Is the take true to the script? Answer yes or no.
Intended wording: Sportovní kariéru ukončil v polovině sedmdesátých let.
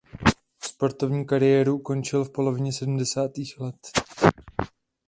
yes